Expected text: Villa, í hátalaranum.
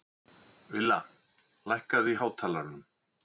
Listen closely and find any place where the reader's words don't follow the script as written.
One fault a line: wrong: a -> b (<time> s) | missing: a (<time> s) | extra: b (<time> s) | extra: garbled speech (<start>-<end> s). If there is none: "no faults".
extra: lækkaðu (1.7 s)